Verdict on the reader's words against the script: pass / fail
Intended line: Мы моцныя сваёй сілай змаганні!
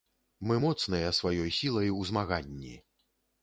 fail